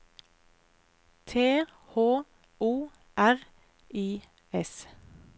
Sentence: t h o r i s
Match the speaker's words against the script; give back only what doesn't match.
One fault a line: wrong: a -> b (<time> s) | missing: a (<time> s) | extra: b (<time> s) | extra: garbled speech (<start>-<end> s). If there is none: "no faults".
no faults